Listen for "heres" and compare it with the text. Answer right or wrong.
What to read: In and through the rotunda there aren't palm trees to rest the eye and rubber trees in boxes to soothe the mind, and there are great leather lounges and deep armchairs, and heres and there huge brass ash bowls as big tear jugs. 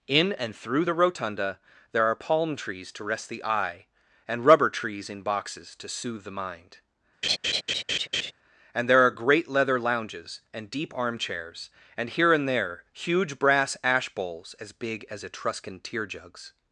wrong